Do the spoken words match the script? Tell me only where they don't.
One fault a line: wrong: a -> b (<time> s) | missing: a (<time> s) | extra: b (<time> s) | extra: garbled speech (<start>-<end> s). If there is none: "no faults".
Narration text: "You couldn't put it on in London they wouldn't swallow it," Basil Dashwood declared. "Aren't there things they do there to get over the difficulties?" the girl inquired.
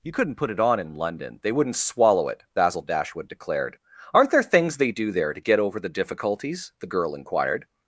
no faults